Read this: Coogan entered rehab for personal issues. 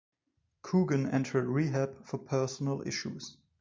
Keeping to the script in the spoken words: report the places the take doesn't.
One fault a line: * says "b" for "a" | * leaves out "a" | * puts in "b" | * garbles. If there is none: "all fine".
all fine